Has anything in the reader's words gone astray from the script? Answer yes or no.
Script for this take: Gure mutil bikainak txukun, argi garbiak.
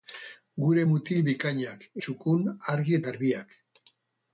no